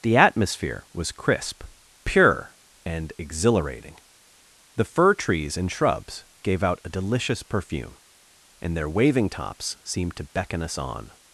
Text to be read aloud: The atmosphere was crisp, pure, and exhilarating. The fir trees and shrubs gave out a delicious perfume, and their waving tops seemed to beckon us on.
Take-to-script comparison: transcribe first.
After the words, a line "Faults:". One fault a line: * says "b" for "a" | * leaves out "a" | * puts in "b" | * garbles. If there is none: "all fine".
The atmosphere was crisp, pure, and exhilarating. The fir trees and shrubs gave out a delicious perfume, and their waving tops seemed to beckon us on.
Faults:
all fine